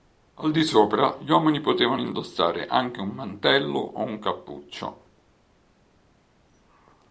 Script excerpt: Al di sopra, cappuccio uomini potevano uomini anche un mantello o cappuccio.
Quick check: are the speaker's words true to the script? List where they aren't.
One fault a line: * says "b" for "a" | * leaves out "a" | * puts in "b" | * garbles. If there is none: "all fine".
* says "gli" for "cappuccio"
* says "indossare" for "uomini"
* puts in "un"